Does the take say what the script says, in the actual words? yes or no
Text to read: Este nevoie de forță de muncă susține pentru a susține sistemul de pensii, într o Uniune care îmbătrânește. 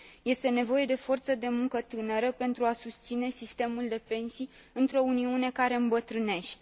no